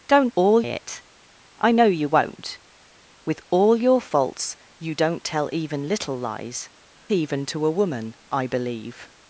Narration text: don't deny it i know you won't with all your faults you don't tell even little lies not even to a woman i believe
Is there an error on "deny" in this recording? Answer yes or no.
yes